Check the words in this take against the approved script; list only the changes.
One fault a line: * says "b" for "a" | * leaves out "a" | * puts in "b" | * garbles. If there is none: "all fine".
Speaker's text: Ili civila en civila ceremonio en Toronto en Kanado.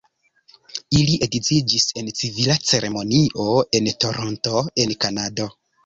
* says "edziĝis" for "civila"